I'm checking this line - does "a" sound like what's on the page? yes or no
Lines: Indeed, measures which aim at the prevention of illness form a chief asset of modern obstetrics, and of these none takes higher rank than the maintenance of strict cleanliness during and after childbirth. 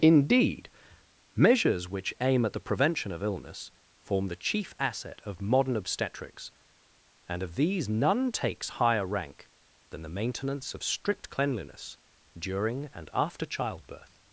no